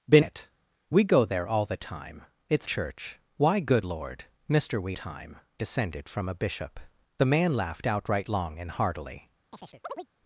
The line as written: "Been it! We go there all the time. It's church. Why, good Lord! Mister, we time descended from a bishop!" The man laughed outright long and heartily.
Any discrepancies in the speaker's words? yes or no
no